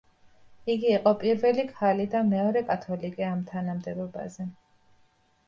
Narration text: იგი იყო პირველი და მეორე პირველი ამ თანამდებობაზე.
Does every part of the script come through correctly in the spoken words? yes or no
no